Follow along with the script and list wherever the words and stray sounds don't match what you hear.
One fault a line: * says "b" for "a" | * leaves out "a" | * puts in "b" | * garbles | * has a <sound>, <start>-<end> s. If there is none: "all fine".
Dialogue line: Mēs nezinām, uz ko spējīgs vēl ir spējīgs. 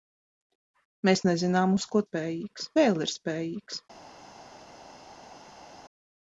all fine